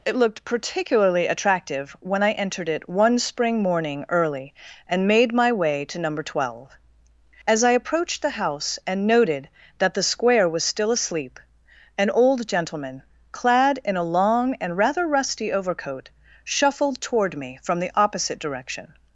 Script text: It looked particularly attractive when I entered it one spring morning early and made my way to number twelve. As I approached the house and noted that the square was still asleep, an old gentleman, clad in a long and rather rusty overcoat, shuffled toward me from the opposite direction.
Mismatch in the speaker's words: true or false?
false